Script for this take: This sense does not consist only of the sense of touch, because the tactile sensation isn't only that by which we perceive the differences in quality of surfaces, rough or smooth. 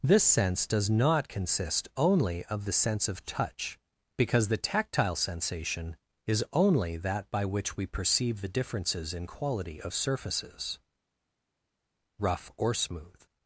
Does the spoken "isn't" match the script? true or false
false